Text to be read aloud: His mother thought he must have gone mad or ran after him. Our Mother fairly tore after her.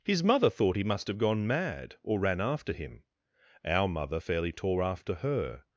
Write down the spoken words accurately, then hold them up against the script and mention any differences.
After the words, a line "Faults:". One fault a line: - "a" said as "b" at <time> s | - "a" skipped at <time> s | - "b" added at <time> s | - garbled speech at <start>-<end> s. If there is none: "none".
His mother thought he must have gone mad or ran after him. Our Mother fairly tore after her.
Faults:
none